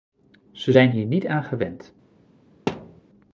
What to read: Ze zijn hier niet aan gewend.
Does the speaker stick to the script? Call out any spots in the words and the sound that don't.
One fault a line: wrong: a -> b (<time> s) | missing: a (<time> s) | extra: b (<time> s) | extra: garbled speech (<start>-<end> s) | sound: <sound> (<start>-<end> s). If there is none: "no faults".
sound: thud (2.7-3.0 s)